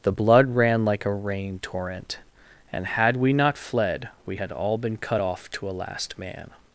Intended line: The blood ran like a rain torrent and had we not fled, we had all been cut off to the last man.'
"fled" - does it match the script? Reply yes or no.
yes